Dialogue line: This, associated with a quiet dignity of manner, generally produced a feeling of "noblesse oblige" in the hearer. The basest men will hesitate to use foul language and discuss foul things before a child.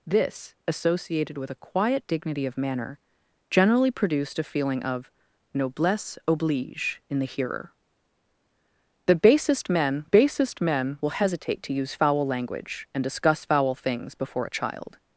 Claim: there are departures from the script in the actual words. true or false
true